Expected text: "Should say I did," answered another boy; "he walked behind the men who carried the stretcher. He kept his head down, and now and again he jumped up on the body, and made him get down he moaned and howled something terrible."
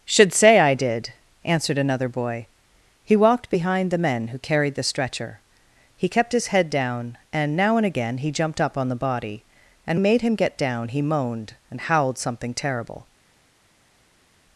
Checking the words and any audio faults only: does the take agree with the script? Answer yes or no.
yes